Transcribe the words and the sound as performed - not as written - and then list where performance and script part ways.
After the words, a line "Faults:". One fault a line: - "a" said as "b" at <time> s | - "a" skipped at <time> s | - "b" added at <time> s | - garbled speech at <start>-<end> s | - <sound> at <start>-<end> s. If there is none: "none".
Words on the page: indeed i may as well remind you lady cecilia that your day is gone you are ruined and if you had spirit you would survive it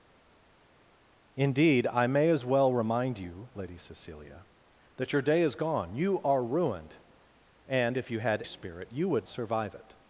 indeed i may as well remind you lady cecilia that your day is gone you are ruined and if you had spirit you would survive it
Faults:
none